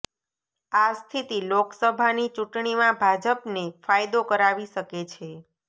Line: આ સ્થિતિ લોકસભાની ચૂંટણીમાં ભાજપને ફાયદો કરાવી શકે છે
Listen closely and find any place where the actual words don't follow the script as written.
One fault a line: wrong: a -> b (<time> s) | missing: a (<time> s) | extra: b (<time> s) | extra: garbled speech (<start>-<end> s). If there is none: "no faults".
no faults